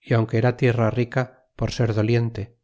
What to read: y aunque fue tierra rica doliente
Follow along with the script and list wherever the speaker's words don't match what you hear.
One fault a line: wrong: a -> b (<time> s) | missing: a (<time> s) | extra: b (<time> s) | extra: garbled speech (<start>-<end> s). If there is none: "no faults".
wrong: fue -> era (0.4 s)
extra: por ser (1.6 s)